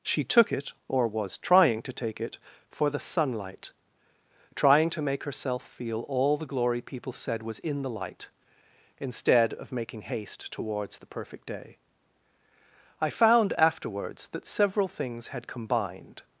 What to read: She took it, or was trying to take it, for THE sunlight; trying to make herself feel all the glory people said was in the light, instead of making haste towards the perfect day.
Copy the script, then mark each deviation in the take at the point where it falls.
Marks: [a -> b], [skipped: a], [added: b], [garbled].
She took it, or was trying to take it, for THE sunlight; trying to make herself feel all the glory people said was in the light, instead of making haste towards the perfect day. [added: I found afterwards that several things had combined]